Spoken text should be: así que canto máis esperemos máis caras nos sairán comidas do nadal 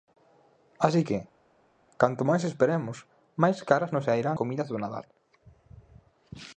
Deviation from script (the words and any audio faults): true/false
false